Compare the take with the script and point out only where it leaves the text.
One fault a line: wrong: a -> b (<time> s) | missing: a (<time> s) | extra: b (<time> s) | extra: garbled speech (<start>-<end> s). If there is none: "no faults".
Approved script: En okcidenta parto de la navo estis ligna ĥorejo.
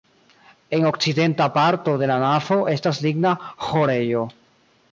wrong: estis -> estas (2.7 s)